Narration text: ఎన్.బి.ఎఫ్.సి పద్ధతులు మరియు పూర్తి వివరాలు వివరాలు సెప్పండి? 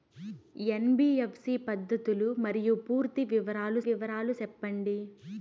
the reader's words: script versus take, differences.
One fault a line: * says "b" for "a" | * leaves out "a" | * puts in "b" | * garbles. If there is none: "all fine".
all fine